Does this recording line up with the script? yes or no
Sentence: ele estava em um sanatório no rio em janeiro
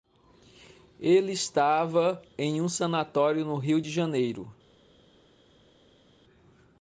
no